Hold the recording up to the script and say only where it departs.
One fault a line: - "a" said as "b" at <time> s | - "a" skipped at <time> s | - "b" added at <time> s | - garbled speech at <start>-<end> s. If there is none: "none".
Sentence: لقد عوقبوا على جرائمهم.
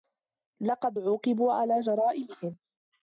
none